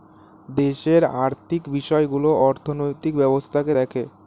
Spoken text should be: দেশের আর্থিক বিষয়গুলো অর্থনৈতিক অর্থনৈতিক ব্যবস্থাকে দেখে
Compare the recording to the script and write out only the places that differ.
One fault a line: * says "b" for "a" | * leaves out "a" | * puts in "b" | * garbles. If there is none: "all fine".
* leaves out "অর্থনৈতিক"